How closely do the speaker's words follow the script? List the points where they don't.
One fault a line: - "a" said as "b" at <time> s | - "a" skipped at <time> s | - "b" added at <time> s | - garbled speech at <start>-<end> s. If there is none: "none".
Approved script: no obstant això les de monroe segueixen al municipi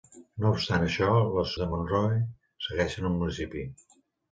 none